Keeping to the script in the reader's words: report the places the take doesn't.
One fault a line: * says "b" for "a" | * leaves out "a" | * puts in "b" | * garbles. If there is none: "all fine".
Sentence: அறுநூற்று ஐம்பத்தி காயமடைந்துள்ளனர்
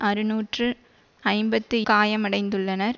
all fine